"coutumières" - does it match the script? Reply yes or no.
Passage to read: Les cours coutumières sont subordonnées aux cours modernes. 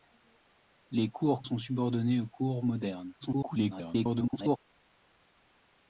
no